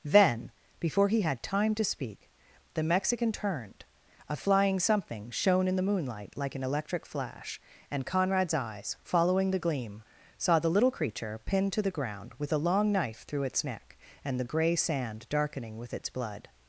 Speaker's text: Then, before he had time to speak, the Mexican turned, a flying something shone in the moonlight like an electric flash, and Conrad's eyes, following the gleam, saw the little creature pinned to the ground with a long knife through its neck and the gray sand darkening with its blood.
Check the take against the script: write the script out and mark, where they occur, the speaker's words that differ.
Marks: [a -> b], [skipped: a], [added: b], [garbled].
Then, before he had time to speak, the Mexican turned, a flying something shone in the moonlight like an electric flash, and Conrad's eyes, following the gleam, saw the little creature pinned to the ground with a long knife through its neck and the gray sand darkening with its blood.